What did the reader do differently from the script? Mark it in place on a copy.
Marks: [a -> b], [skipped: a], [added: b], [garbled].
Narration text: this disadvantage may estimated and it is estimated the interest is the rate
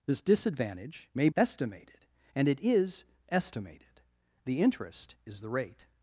this disadvantage may estimated and it is estimated the interest is the rate